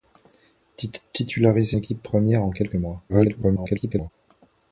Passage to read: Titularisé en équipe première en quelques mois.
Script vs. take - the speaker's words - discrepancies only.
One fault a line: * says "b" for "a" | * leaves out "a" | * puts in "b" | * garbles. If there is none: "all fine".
* leaves out "en"
* garbles